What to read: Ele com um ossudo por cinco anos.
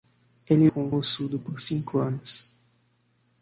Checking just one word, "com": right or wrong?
right